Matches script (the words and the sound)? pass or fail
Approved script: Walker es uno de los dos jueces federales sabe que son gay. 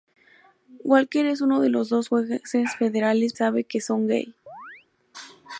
fail